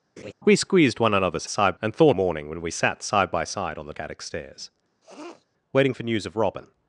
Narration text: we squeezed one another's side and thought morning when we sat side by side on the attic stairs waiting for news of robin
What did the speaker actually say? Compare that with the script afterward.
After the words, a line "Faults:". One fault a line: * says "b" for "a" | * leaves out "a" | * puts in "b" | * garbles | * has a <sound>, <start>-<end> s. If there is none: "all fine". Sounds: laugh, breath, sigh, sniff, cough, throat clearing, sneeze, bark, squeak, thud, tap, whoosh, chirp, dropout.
we squeezed one another's side and thought morning when we sat side by side on the attic stairs waiting for news of robin
Faults:
* has a laugh, 0.2-0.3 s
* has a sniff, 5.0-5.5 s